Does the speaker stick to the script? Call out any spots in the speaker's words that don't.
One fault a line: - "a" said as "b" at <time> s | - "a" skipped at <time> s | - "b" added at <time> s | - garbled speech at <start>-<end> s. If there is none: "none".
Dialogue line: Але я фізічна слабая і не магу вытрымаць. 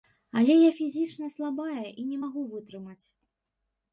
none